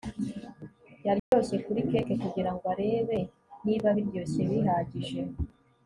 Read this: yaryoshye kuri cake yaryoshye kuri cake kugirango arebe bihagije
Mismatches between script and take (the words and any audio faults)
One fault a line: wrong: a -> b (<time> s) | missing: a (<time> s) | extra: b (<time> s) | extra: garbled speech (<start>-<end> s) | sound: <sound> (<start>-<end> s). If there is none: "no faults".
sound: dropout (1.2-1.3 s)
wrong: yaryoshye kuri cake kugirango arebe -> kugirango arebe niba biryoshye (2.2 s)